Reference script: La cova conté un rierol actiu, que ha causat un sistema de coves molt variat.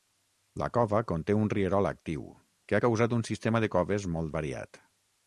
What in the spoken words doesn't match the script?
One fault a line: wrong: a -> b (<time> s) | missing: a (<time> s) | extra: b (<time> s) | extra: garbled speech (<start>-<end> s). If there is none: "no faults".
no faults